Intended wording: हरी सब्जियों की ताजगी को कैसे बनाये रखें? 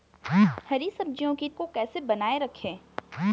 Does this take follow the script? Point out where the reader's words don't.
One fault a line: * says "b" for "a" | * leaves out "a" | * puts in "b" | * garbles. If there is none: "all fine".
* leaves out "ताजगी"